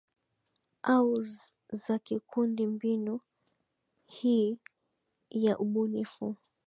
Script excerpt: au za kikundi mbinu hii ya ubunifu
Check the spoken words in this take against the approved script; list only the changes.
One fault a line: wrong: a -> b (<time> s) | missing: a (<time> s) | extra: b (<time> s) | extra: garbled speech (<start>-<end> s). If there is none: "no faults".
no faults